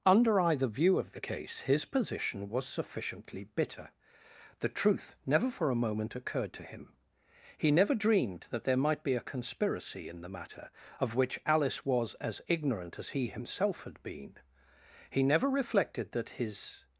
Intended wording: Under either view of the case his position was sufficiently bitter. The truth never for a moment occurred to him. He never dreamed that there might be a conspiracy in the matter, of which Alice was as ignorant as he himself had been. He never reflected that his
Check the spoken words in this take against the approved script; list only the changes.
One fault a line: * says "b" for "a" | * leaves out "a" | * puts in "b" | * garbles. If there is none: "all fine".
all fine